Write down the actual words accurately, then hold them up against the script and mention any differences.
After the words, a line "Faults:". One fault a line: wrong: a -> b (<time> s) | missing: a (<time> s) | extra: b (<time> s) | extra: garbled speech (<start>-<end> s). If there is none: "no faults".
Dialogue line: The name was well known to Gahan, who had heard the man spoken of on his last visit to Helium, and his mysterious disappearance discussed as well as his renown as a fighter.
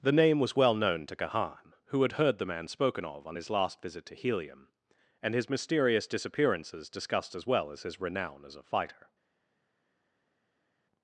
The name was well known to Gahan, who had heard the man spoken of on his last visit to Helium, and his mysterious disappearances discussed as well as his renown as a fighter.
Faults:
wrong: disappearance -> disappearances (6.1 s)